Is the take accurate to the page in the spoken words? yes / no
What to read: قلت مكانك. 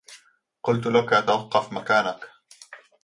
no